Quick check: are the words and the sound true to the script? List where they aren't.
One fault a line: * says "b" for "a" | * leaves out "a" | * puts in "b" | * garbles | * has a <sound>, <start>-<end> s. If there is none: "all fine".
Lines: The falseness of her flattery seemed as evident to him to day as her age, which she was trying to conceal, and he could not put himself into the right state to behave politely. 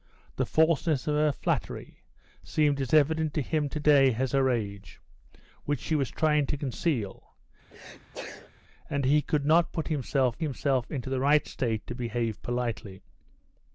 * has a sneeze, 7.7-8.5 s
* puts in "himself"